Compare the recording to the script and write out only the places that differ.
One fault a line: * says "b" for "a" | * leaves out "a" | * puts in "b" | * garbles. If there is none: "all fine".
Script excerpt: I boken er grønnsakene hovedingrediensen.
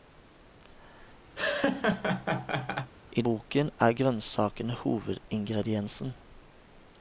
all fine